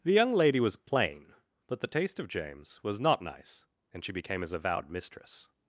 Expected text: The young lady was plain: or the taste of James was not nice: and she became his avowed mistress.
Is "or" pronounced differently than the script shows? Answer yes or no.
yes